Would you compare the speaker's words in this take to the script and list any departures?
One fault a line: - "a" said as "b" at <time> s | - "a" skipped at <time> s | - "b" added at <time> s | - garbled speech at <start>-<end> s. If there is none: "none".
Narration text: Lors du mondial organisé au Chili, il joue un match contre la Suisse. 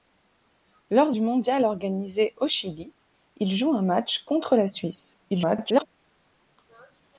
- garbled speech at 5.3-5.9 s